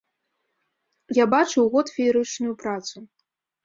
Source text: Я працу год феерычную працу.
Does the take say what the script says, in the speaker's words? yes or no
no